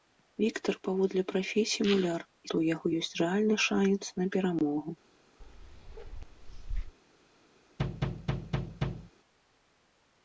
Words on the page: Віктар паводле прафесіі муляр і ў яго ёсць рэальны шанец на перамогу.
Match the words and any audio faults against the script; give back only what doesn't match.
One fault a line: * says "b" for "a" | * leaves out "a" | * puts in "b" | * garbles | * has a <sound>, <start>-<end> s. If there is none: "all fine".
* has a bark, 5.4-6.9 s
* has a thud, 7.8-9.1 s